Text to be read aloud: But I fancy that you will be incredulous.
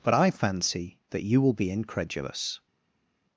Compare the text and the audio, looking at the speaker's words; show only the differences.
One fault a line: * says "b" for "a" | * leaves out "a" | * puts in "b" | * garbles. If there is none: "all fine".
all fine